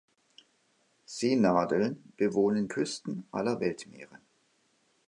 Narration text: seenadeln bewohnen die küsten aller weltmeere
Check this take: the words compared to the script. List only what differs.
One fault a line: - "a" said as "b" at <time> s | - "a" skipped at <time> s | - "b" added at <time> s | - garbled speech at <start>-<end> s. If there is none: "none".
- "die" skipped at 2.6 s